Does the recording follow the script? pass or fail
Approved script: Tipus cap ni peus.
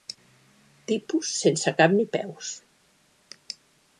fail